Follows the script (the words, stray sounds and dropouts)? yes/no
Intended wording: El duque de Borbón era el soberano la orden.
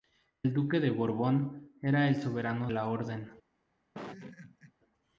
no